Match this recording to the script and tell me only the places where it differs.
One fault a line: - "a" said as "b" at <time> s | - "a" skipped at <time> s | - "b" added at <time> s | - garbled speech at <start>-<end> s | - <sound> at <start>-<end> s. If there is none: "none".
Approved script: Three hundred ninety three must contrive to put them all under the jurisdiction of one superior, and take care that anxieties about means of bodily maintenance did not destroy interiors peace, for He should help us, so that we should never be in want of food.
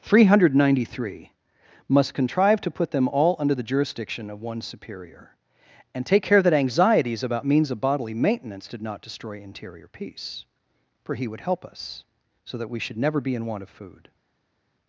- "interiors" said as "interior" at 9.4 s
- "should" said as "would" at 11.3 s